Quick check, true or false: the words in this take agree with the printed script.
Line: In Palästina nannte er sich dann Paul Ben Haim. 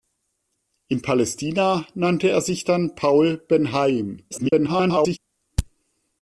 false